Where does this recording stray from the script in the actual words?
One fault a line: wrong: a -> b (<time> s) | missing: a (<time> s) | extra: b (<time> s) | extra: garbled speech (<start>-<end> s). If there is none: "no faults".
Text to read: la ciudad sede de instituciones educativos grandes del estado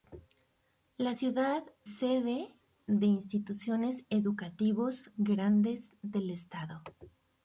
no faults